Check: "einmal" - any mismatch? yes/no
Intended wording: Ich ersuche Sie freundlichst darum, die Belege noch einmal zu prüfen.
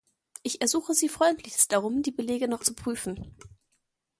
yes